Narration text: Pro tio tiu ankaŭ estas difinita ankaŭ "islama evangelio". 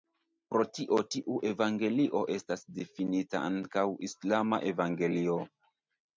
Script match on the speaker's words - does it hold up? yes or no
no